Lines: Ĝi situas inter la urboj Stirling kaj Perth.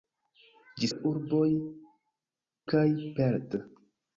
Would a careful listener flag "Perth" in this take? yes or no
no